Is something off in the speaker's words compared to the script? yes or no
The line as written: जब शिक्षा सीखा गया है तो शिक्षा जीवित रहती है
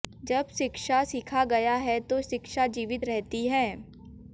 no